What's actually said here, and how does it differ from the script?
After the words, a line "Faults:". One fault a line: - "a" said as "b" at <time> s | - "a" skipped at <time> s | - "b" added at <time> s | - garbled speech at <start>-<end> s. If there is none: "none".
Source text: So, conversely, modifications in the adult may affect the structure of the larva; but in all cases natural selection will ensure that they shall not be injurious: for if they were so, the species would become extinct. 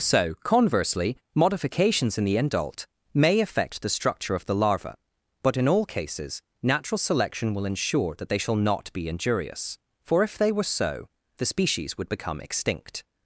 So, conversely, modifications in the adult may affect the structure of the larva; but in all cases natural selection will ensure that they shall not be injurious: for if they were so, the species would become extinct.
Faults:
none